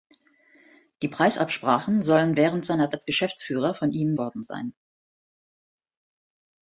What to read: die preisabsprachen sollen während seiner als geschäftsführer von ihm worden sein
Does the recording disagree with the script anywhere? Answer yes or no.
no